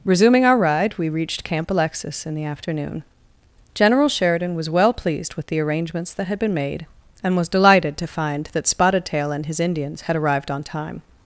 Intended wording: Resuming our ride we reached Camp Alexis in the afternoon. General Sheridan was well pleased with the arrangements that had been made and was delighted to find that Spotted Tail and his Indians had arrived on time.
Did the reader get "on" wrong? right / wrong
right